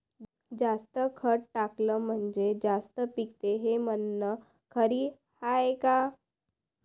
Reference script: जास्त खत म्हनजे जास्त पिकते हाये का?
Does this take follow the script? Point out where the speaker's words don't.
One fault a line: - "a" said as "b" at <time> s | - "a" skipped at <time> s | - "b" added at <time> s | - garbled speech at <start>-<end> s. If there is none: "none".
- "टाकलं" added at 1.5 s
- "हे म्हन खरी" added at 3.6 s